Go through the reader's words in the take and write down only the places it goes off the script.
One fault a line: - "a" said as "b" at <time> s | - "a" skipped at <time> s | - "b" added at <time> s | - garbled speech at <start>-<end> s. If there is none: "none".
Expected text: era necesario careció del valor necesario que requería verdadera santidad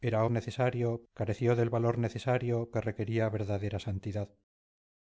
none